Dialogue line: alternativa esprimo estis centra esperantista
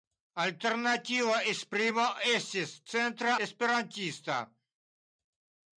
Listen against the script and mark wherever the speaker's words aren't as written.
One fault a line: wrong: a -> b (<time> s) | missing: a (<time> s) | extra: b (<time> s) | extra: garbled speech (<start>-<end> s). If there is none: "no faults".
no faults